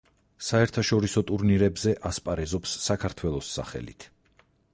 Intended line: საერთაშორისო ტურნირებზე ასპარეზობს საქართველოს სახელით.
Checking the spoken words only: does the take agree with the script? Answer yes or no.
yes